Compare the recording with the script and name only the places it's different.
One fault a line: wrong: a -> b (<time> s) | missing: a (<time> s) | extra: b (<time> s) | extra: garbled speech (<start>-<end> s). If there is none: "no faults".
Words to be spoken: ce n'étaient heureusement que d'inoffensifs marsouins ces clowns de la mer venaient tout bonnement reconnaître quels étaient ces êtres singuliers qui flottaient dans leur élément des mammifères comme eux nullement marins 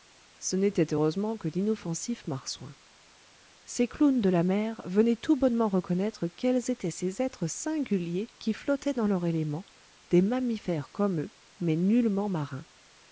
extra: mais (11.6 s)